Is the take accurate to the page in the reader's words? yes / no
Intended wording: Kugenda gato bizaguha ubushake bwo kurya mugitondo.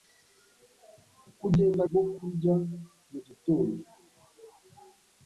no